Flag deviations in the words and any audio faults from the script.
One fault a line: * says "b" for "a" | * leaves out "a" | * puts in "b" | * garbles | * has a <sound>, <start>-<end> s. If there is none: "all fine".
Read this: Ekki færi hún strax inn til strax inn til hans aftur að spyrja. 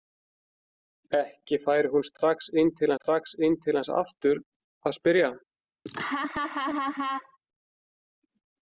* has a laugh, 5.9-7.4 s